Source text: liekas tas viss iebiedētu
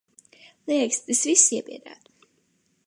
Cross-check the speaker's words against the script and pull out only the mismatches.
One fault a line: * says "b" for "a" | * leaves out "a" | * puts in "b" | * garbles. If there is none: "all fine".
all fine